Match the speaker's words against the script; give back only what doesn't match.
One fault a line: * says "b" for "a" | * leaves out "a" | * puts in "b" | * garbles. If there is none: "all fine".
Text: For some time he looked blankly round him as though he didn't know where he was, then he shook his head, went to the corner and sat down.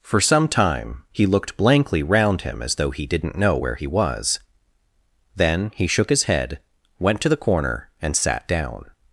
all fine